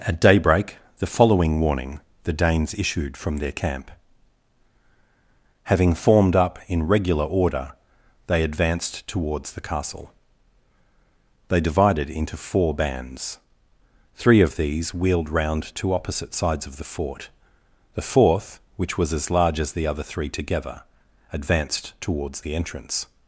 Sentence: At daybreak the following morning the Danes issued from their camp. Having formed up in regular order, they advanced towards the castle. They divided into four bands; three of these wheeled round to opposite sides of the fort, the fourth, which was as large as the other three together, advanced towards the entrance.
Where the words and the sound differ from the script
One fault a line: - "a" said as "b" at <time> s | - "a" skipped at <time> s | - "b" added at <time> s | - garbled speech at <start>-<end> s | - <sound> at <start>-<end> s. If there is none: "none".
- "morning" said as "warning" at 1.6 s